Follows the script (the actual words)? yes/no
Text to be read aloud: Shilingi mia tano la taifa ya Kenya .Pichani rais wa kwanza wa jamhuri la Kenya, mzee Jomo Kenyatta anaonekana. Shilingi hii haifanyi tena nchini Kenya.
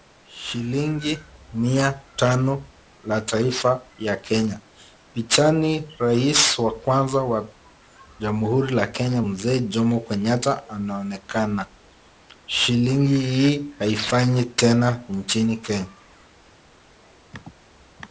yes